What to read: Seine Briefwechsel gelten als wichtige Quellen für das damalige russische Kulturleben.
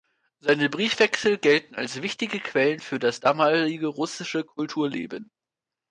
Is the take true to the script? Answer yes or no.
yes